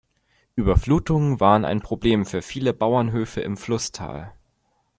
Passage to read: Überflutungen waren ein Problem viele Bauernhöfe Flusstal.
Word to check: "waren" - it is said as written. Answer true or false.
true